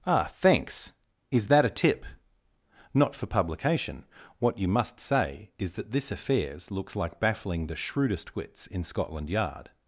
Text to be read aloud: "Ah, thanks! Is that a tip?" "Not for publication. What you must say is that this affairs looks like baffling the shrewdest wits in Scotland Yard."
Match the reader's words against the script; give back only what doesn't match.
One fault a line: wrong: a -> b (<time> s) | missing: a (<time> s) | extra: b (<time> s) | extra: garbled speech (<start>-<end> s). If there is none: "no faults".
no faults